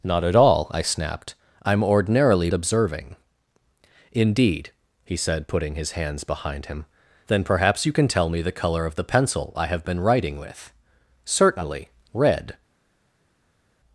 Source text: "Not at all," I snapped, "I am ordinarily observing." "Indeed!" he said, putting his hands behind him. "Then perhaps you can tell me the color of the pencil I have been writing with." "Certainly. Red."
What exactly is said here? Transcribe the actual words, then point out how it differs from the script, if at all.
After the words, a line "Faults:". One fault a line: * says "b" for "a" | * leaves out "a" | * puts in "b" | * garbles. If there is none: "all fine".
"Not at all," I snapped, "I am ordinarily observing." "Indeed!" he said, putting his hands behind him. "Then perhaps you can tell me the color of the pencil I have been writing with." "Certainly. Red."
Faults:
all fine